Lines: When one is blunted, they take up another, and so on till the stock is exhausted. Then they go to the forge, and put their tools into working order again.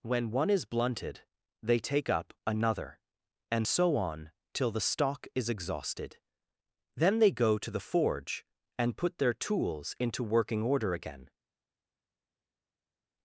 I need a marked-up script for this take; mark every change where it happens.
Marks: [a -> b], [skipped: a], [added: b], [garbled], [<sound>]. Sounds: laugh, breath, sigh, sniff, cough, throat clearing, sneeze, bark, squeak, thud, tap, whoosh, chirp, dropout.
When one is blunted, they take up another, and so on till the stock is exhausted. Then they go to the forge, and put their tools into working order again.